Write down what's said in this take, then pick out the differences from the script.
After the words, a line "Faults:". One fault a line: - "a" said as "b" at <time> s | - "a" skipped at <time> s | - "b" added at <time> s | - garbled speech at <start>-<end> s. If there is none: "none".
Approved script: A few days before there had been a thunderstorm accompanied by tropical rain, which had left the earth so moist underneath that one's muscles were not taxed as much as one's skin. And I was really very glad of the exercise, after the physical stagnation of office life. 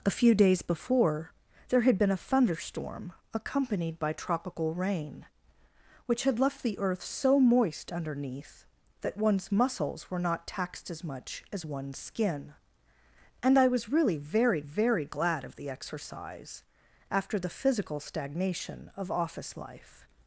A few days before there had been a thunderstorm accompanied by tropical rain, which had left the earth so moist underneath that one's muscles were not taxed as much as one's skin. And I was really very very glad of the exercise, after the physical stagnation of office life.
Faults:
- "very" added at 14.6 s